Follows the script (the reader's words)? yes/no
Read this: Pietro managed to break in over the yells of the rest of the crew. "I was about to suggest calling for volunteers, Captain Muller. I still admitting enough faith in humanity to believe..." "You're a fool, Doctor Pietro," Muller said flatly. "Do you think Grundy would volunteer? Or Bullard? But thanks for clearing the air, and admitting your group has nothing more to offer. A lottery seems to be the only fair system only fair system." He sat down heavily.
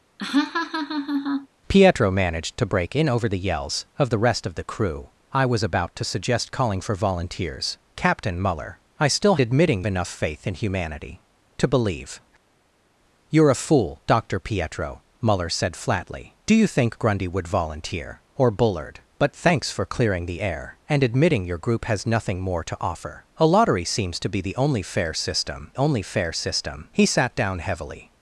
yes